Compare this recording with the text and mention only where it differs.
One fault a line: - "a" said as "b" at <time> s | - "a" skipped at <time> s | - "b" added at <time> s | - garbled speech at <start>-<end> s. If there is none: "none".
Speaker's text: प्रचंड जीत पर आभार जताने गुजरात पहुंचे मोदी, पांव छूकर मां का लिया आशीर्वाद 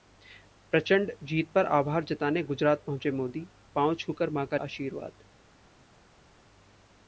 - "लिया" skipped at 4.6 s